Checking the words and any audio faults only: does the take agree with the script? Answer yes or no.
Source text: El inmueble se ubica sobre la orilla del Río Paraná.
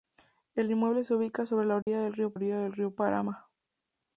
no